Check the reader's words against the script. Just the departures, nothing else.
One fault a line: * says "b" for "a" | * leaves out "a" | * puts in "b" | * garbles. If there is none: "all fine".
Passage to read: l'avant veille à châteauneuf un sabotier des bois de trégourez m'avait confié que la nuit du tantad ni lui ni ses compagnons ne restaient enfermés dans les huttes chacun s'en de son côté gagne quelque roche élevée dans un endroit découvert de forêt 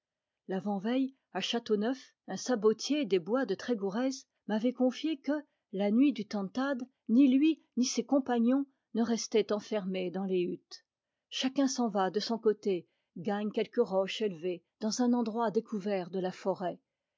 * puts in "va"
* puts in "la"